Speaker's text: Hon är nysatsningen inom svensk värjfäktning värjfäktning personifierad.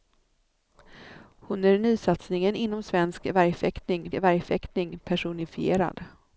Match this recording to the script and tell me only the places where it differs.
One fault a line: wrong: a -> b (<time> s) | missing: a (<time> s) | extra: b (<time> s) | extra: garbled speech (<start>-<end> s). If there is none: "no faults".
no faults